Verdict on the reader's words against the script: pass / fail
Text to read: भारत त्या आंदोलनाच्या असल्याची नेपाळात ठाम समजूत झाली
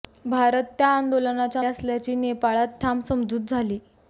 pass